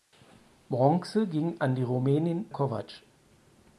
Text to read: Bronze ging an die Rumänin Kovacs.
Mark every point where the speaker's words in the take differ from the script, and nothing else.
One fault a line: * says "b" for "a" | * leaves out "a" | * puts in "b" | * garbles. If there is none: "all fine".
all fine